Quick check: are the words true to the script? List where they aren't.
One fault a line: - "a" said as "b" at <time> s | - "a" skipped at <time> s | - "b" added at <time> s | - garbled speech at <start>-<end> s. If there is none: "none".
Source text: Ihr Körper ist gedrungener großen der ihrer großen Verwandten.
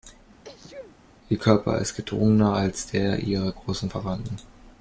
- "großen" said as "als" at 2.5 s